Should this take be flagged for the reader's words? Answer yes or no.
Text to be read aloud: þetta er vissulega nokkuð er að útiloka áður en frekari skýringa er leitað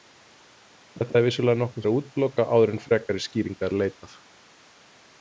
no